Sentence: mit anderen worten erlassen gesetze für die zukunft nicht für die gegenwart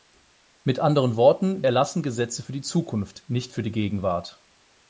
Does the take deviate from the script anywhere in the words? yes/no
no